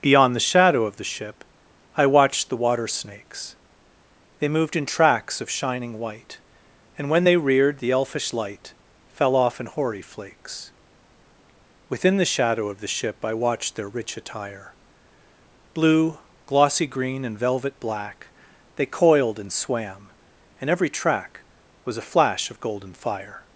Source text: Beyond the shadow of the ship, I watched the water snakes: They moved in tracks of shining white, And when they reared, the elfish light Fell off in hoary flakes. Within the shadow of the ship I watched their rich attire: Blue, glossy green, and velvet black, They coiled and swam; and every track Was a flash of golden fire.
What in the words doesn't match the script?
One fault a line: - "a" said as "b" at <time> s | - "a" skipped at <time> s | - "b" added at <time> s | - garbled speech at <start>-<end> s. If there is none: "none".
none